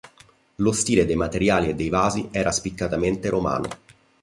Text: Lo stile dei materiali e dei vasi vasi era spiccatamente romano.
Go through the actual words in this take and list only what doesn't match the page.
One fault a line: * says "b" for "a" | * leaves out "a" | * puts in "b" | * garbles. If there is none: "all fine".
* leaves out "vasi"